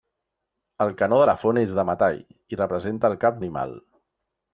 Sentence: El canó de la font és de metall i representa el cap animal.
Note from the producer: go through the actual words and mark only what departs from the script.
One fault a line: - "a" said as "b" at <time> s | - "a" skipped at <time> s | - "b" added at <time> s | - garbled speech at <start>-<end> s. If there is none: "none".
none